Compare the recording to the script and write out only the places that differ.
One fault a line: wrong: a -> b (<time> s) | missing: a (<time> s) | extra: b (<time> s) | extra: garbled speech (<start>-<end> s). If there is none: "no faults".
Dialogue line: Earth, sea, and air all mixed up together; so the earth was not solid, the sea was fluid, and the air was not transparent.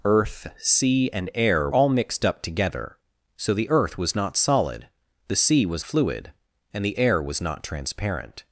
no faults